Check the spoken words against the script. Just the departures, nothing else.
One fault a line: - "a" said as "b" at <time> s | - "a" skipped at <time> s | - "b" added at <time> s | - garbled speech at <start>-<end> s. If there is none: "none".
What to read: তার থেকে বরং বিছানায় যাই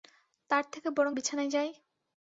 none